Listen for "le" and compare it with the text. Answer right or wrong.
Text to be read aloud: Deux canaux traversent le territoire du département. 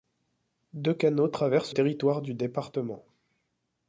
wrong